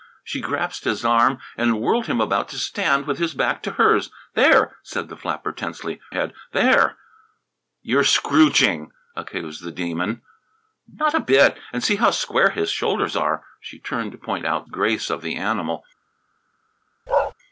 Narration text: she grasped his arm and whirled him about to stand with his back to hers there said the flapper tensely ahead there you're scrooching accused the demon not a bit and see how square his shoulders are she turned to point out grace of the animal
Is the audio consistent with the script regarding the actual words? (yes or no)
yes